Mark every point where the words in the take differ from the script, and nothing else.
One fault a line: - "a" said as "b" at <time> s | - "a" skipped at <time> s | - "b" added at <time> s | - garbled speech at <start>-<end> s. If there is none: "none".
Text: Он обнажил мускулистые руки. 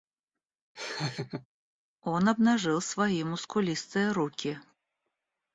- "свои" added at 2.8 s